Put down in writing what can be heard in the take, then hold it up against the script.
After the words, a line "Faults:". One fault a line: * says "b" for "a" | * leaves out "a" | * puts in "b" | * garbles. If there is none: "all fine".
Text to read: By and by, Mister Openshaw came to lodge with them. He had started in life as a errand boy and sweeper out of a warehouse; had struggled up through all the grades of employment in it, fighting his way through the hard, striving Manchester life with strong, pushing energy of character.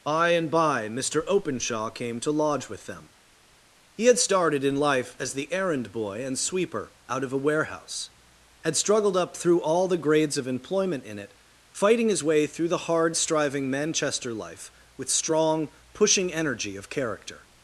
By and by, Mister Openshaw came to lodge with them. He had started in life as the errand boy and sweeper out of a warehouse; had struggled up through all the grades of employment in it, fighting his way through the hard, striving Manchester life with strong, pushing energy of character.
Faults:
* says "the" for "a"